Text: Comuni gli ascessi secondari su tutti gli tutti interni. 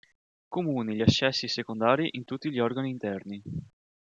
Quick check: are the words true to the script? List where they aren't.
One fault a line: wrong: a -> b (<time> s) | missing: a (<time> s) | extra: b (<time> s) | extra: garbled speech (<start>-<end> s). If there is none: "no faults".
wrong: su -> in (2.1 s)
wrong: tutti -> organi (2.6 s)